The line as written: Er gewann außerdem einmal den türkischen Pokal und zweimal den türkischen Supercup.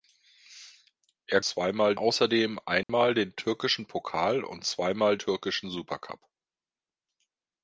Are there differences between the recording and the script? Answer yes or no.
yes